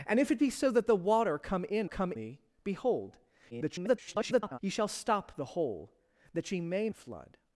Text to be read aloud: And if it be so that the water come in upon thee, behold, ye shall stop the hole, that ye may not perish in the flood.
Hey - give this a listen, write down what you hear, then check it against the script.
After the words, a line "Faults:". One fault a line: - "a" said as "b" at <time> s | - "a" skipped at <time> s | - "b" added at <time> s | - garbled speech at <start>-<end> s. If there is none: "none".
And if it be so that the water come in come thee, behold, [garbled] ye shall stop the hole, that ye may the flood.
Faults:
- "upon" said as "come" at 1.8 s
- garbled speech at 3.5-4.6 s
- "not perish in" skipped at 6.9 s